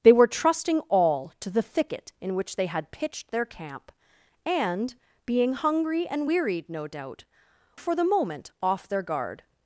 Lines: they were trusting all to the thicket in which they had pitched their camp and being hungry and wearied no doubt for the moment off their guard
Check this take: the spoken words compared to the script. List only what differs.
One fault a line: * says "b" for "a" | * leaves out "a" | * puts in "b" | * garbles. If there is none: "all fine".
all fine